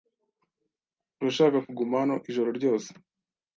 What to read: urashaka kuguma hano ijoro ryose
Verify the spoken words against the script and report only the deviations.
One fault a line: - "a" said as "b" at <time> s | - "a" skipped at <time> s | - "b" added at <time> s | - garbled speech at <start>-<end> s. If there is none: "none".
none